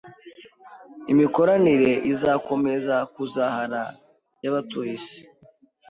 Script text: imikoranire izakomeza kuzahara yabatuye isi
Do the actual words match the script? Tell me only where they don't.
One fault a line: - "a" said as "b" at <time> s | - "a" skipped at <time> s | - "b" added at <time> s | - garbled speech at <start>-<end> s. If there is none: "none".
none